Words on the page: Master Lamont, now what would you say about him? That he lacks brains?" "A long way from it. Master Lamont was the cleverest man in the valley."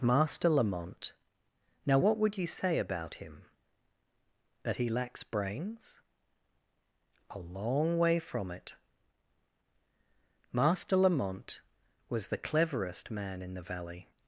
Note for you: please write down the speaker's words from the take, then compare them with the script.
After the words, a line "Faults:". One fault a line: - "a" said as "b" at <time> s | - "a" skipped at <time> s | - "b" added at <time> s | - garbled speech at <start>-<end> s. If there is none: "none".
Master Lamont, now what would you say about him? That he lacks brains?" "A long way from it. Master Lamont was the cleverest man in the valley."
Faults:
none